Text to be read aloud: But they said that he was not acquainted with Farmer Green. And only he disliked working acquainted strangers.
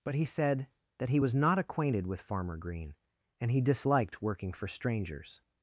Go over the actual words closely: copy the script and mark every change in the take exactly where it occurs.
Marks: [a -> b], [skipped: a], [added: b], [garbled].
But [they -> he] said that he was not acquainted with Farmer Green. And [skipped: only] he disliked working [acquainted -> for] strangers.